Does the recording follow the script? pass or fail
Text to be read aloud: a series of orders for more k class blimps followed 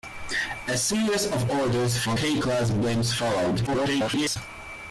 fail